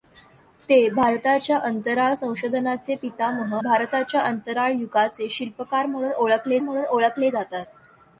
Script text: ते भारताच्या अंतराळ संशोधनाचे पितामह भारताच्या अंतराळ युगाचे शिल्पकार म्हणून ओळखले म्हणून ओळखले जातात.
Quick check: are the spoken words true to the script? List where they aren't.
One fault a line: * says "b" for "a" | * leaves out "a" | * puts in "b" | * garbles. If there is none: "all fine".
all fine